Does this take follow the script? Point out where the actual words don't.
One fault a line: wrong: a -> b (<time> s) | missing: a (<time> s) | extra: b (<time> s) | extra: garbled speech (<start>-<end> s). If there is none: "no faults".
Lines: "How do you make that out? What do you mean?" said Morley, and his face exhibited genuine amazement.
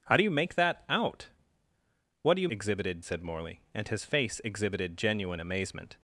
wrong: mean -> exhibited (2.5 s)